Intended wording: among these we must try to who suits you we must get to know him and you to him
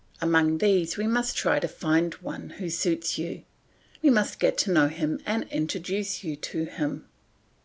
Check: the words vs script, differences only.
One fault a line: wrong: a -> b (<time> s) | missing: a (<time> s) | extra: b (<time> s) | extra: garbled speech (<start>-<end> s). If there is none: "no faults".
extra: find one (1.7 s)
extra: introduce (5.5 s)